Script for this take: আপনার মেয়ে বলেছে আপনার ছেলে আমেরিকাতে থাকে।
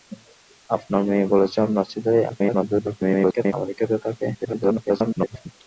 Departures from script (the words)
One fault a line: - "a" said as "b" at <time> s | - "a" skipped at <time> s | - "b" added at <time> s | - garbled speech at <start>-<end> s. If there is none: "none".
- garbled speech at 2.3-3.5 s
- garbled speech at 4.3-5.5 s